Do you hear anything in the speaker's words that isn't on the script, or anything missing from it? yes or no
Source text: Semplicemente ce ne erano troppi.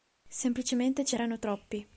yes